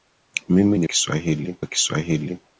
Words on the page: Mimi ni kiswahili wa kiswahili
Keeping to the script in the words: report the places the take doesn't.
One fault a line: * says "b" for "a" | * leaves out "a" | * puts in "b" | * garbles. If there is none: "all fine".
all fine